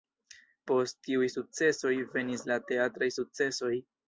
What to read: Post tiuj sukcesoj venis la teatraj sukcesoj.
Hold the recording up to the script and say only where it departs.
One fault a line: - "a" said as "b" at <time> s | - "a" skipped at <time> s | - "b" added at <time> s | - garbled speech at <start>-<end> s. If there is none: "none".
none